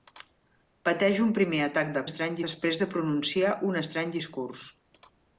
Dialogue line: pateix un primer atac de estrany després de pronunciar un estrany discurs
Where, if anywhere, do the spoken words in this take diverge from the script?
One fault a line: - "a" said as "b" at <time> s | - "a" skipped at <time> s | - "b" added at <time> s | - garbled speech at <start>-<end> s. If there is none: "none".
none